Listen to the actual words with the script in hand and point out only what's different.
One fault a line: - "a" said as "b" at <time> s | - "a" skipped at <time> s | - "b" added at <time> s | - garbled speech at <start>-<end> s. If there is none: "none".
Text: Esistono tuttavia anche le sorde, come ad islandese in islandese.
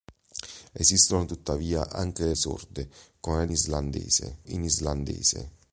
none